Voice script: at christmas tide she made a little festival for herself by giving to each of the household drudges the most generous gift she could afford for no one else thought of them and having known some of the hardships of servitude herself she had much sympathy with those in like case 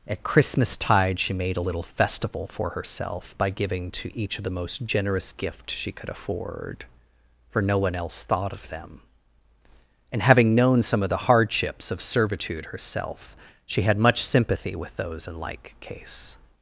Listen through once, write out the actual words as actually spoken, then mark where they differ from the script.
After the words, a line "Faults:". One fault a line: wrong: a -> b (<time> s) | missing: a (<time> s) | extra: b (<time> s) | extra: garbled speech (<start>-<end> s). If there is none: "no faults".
at christmas tide she made a little festival for herself by giving to each of the most generous gift she could afford for no one else thought of them and having known some of the hardships of servitude herself she had much sympathy with those in like case
Faults:
missing: household drudges the (4.5 s)